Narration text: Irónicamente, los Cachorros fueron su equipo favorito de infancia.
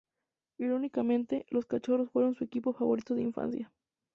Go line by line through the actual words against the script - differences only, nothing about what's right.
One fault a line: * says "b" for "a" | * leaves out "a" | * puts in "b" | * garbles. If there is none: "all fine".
all fine